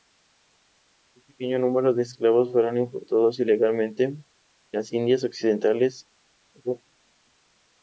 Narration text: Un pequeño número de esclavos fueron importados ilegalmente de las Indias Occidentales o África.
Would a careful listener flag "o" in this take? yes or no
no